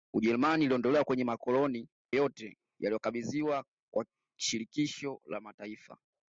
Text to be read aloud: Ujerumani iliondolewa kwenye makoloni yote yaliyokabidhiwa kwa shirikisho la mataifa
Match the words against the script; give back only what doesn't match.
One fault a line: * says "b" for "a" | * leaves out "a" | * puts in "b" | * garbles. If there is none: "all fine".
all fine